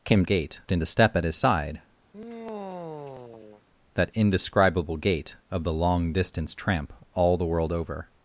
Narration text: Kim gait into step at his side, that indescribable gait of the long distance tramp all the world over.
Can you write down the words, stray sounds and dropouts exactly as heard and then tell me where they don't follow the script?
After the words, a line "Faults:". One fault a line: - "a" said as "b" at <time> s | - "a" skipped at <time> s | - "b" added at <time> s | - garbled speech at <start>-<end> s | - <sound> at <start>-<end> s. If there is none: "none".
Kim gait into step at his side, that indescribable gait of the long distance tramp all the world over.
Faults:
- sigh at 2.1-3.6 s